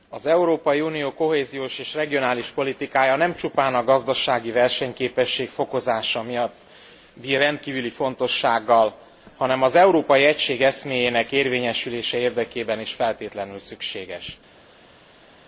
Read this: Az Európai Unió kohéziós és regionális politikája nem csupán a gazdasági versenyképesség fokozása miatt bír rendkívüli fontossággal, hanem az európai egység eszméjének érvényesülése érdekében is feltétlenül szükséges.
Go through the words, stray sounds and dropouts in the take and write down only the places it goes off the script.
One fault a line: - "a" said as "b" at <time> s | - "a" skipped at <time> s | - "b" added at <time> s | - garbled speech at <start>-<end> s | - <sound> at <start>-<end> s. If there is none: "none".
none